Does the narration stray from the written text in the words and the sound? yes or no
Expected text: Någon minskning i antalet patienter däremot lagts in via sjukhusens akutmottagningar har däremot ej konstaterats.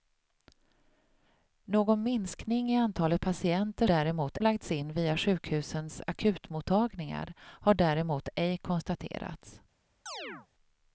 yes